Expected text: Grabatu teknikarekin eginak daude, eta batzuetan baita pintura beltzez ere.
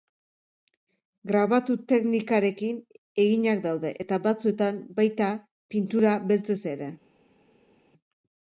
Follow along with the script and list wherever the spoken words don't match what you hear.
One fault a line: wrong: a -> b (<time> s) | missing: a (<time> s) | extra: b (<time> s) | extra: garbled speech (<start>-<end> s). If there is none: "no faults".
no faults